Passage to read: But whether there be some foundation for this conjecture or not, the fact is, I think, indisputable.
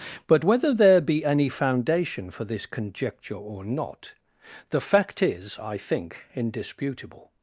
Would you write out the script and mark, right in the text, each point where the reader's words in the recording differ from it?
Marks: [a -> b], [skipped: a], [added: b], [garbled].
But whether there be [some -> any] foundation for this conjecture or not, the fact is, I think, indisputable.